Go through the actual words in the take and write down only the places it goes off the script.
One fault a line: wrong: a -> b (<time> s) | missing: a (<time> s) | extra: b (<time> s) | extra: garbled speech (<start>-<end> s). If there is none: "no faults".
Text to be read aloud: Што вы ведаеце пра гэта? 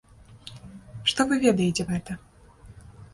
missing: пра (1.8 s)